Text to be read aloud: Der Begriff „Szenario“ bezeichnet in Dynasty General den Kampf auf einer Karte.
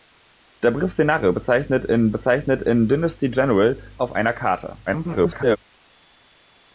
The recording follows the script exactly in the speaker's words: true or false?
false